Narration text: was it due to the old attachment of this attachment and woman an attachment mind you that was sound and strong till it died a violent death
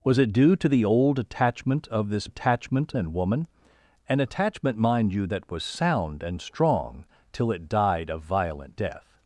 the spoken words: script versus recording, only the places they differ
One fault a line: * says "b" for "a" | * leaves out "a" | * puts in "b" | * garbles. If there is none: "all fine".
all fine